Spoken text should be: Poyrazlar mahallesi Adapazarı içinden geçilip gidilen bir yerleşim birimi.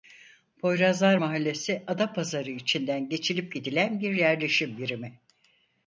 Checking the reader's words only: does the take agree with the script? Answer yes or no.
yes